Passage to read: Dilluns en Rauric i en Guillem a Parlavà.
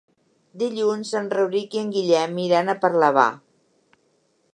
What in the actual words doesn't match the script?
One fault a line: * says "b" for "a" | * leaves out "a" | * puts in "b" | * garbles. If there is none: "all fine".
* puts in "iran"